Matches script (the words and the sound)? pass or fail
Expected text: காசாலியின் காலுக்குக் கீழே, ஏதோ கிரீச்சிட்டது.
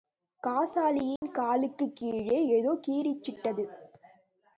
fail